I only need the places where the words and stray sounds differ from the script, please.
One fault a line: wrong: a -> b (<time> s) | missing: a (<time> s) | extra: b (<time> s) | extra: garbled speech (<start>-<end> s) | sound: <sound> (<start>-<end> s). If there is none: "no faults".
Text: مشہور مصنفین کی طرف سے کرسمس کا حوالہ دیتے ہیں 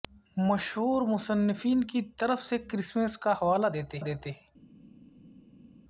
extra: دیتے (4.0 s)